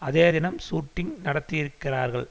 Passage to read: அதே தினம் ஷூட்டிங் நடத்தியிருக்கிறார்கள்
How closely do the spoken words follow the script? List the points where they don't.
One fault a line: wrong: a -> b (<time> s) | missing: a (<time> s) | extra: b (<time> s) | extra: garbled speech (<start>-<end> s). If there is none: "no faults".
no faults